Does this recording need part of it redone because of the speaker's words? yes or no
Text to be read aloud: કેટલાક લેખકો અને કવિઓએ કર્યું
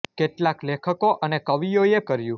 no